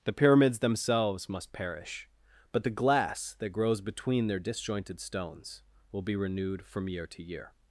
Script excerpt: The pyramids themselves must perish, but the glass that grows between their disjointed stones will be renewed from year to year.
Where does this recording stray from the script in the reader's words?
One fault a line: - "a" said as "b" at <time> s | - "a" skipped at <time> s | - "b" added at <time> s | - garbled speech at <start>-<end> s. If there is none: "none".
none